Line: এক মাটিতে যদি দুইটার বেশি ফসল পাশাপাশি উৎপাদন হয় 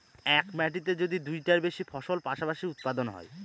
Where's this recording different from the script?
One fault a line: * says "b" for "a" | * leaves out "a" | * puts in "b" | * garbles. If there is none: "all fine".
all fine